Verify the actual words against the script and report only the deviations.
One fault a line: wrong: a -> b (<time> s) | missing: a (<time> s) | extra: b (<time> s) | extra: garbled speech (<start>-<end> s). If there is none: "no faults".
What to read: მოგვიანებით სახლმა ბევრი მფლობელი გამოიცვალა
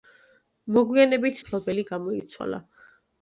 missing: სახლმა ბევრი (1.4 s)